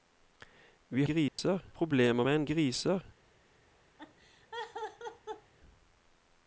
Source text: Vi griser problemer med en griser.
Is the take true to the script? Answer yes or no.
yes